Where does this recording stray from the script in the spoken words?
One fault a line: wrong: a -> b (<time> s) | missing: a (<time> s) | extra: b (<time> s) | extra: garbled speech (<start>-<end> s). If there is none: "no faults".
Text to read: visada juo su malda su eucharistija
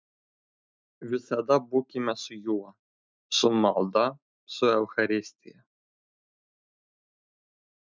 extra: būkime su (1.7 s)